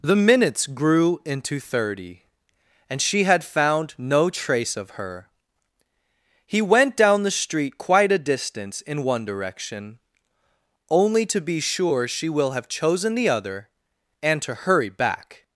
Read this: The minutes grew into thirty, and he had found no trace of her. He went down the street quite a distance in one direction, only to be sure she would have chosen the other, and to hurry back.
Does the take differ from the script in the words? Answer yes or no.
yes